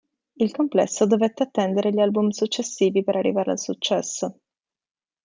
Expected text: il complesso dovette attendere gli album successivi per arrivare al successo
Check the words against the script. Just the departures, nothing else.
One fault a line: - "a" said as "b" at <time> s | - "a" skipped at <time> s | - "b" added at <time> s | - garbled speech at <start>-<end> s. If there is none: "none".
none